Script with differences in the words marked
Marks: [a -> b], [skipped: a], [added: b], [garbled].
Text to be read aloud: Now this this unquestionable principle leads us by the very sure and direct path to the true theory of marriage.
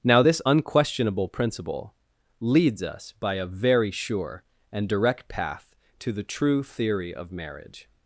Now this [skipped: this] unquestionable principle leads us by [the -> a] very sure and direct path to the true theory of marriage.